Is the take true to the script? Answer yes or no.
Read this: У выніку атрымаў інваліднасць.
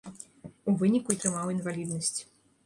yes